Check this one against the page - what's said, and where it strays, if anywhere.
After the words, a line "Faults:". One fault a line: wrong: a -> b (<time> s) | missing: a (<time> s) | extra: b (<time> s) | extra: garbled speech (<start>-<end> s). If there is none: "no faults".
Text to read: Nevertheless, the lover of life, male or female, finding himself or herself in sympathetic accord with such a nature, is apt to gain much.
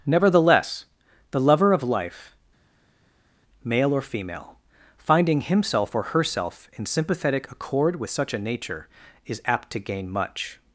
Nevertheless, the lover of life, male or female, finding himself or herself in sympathetic accord with such a nature, is apt to gain much.
Faults:
no faults